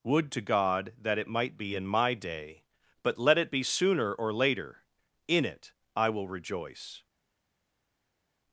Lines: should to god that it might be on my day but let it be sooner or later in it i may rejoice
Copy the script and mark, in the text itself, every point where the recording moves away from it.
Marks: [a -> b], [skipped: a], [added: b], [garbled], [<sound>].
[should -> would] to god that it might be [on -> in] my day but let it be sooner or later in it i [may -> will] rejoice